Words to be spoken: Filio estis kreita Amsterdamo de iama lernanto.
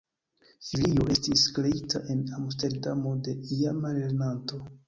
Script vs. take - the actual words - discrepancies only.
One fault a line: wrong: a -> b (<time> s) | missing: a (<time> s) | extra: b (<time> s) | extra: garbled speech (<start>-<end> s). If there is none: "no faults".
extra: en (2.1 s)